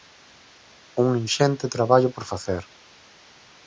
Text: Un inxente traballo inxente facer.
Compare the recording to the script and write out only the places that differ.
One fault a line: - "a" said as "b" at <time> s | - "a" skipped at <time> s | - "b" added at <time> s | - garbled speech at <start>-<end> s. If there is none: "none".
- "inxente" said as "por" at 2.1 s